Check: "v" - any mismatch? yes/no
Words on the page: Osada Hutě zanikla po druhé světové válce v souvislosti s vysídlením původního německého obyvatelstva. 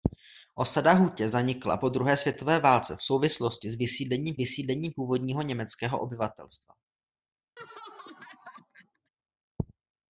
no